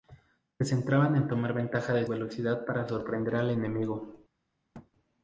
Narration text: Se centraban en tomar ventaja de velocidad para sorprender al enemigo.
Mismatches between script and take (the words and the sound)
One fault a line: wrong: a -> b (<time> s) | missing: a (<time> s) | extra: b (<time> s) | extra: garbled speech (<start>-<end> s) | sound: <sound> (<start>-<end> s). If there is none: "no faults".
sound: thud (4.7-4.9 s)